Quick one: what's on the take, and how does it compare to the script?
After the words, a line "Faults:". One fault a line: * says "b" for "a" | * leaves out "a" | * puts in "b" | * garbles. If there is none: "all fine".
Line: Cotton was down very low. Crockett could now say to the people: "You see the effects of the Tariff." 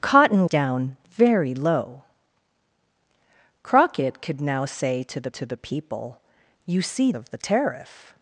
Cotton down very low. Crockett could now say to the to the people: "You see of the Tariff."
Faults:
* leaves out "was"
* puts in "to the"
* leaves out "the effects"